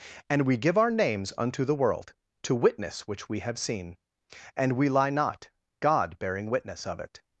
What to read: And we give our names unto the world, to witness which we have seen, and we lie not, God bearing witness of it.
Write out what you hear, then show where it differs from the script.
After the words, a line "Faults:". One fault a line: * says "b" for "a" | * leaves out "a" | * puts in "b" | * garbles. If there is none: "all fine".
And we give our names unto the world, to witness which we have seen, and we lie not, God bearing witness of it.
Faults:
all fine